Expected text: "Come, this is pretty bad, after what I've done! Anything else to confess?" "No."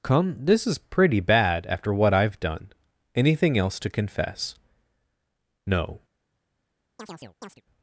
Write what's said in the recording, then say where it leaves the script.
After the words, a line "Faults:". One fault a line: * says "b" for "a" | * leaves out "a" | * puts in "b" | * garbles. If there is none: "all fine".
"Come, this is pretty bad, after what I've done! Anything else to confess?" "No."
Faults:
all fine